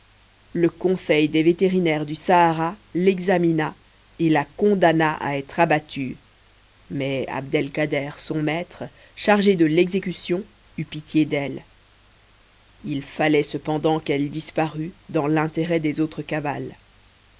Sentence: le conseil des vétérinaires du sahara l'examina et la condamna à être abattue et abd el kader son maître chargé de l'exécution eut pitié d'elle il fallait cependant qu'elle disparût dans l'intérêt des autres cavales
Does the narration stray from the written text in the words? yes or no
yes